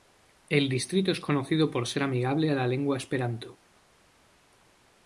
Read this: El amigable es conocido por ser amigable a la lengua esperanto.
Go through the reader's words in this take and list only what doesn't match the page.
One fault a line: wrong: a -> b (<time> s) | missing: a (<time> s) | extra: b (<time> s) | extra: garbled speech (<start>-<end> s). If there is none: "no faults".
wrong: amigable -> distrito (0.7 s)